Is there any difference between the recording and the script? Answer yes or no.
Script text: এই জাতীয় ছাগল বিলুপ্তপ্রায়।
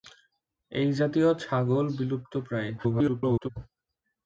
yes